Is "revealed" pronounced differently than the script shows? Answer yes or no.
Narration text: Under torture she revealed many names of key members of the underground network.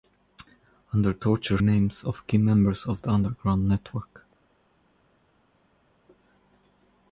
yes